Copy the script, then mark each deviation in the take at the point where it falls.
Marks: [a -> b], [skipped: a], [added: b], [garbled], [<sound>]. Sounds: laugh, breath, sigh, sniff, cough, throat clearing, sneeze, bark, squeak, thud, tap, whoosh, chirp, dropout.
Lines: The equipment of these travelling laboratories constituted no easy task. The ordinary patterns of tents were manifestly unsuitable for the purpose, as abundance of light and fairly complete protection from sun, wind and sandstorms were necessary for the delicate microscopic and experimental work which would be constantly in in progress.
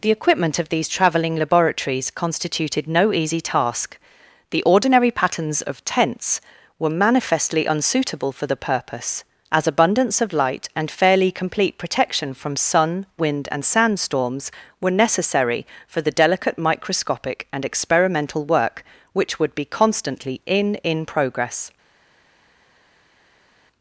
The equipment of these travelling laboratories constituted no easy task. The ordinary patterns of tents were manifestly unsuitable for the purpose, as abundance of light and fairly complete protection from sun, wind and sandstorms were necessary for the delicate microscopic and experimental work which would be constantly in in progress.